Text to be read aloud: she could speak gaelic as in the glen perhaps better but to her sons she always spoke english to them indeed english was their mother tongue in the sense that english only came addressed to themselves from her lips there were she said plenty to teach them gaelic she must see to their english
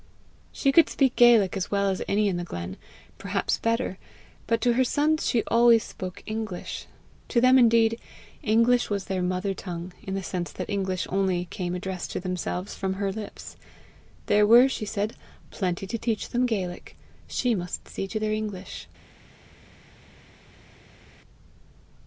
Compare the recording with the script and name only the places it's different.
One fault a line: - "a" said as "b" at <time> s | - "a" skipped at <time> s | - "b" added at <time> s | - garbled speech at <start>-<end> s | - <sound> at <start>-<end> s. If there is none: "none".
- "well as any" added at 1.7 s